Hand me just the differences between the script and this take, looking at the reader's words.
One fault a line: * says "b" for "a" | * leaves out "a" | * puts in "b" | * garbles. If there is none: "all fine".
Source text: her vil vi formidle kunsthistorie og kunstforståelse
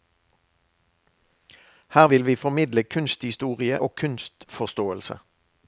all fine